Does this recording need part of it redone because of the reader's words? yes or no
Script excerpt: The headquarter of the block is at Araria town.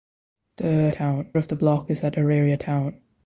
yes